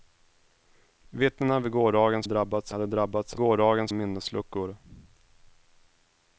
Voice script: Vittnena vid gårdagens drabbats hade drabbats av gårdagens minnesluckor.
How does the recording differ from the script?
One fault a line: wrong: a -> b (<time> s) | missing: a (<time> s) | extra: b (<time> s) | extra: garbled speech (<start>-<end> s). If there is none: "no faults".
no faults